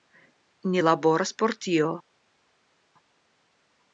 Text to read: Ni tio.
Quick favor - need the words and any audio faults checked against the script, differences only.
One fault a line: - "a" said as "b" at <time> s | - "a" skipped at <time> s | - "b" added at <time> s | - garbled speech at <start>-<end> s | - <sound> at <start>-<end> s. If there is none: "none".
- "laboras por" added at 0.8 s